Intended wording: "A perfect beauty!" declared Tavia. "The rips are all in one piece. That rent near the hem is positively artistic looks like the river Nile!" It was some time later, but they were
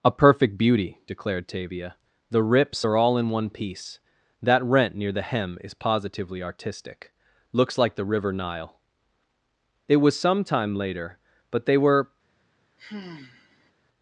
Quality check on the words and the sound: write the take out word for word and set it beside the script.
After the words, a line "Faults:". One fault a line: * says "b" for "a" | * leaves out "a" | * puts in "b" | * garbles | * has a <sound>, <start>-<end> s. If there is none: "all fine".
"A perfect beauty!" declared Tavia. "The rips are all in one piece. That rent near the hem is positively artistic looks like the river Nile!" It was some time later, but they were
Faults:
* has a sigh, 12.8-13.7 s